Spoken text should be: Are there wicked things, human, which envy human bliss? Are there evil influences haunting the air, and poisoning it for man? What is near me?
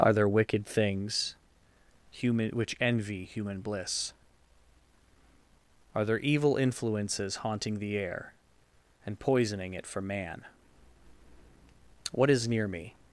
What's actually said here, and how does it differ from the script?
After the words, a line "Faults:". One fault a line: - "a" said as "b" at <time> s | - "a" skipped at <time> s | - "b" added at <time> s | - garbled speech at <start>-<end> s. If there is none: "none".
Are there wicked things, human, which envy human bliss? Are there evil influences haunting the air, and poisoning it for man? What is near me?
Faults:
none